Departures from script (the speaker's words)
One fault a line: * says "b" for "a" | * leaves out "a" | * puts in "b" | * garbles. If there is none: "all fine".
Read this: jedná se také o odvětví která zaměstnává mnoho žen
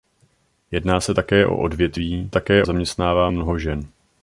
* says "také" for "která"